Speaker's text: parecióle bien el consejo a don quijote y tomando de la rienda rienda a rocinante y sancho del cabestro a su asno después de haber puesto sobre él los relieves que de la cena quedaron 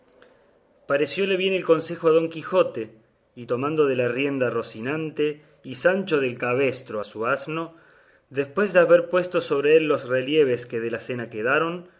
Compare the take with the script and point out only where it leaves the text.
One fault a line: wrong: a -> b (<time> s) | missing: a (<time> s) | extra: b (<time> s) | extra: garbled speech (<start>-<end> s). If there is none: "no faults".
missing: rienda (4.5 s)